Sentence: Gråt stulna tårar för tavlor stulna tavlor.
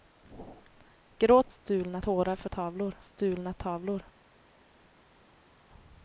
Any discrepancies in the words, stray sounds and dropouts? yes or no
no